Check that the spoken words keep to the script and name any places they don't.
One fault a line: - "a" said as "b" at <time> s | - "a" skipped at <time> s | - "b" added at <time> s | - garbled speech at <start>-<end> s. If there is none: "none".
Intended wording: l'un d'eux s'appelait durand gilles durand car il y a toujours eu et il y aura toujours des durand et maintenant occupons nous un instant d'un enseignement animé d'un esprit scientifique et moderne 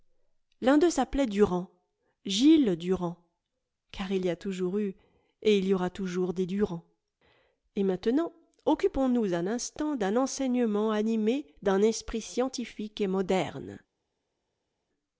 none